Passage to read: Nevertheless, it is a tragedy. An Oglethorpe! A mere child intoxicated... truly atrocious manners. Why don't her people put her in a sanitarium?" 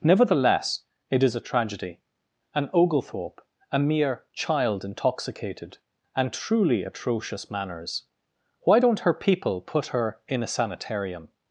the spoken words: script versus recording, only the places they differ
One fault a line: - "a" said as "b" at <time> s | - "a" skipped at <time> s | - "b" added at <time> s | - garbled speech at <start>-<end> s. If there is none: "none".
- "and" added at 6.2 s